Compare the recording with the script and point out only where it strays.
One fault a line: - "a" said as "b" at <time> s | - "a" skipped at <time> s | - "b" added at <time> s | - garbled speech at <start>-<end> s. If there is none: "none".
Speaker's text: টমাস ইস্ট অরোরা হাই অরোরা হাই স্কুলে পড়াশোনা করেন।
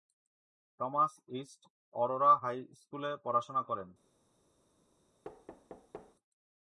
- "অরোরা হাই" skipped at 2.6 s